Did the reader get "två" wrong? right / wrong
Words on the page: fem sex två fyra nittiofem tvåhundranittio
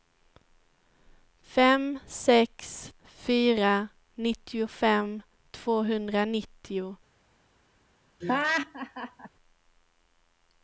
wrong